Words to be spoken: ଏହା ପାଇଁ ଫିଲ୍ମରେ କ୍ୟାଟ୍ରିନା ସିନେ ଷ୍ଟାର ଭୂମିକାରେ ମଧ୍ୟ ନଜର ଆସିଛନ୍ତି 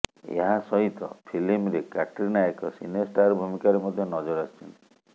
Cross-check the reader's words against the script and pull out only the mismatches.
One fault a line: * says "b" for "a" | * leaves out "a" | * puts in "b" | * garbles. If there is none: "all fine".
* says "ସହିତ" for "ପାଇଁ"
* puts in "ଏକ"